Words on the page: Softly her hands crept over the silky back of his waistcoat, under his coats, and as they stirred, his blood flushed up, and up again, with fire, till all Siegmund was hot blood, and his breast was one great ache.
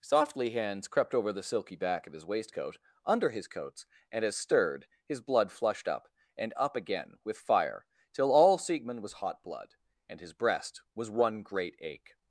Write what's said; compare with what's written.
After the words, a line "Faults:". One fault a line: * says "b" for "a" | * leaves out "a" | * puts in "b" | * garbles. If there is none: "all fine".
Softly hands crept over the silky back of his waistcoat, under his coats, and as stirred, his blood flushed up, and up again, with fire, till all Siegmund was hot blood, and his breast was one great ache.
Faults:
* leaves out "her"
* leaves out "they"